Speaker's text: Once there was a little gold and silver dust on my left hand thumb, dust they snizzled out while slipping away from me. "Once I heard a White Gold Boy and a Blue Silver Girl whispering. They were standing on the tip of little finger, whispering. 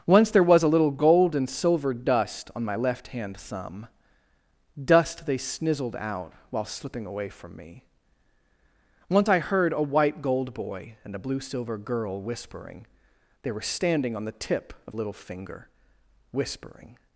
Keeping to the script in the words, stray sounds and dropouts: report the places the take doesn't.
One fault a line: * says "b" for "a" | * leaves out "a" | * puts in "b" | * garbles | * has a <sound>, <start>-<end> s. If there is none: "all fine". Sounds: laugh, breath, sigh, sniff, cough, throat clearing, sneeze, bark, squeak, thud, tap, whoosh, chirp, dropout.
all fine